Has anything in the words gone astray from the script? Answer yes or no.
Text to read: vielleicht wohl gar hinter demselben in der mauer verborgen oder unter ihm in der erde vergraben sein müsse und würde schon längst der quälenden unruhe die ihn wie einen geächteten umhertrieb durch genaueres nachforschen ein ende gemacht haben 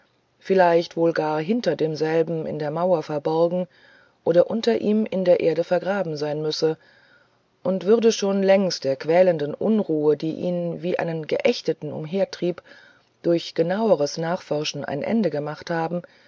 no